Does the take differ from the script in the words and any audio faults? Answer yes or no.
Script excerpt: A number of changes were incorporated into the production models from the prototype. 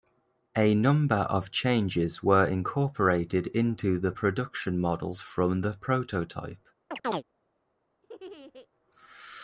yes